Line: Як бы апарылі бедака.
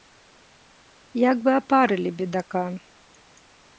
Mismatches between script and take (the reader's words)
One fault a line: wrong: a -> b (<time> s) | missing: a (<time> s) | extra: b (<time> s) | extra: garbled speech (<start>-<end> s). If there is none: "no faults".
no faults